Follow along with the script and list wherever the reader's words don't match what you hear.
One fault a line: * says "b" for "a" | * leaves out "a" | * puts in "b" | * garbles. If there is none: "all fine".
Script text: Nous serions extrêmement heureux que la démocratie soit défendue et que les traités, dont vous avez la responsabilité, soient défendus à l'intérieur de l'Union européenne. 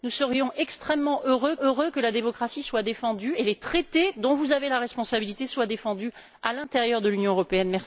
* puts in "heureux"